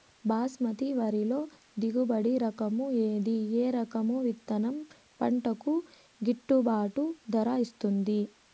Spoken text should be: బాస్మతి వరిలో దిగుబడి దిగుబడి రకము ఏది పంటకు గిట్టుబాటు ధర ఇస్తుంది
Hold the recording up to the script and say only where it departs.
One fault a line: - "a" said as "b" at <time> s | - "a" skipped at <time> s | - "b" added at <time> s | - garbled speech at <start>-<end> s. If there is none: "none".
- "దిగుబడి" said as "రకము ఏది ఏ" at 2.4 s
- "ఏది" said as "విత్తనం" at 4.2 s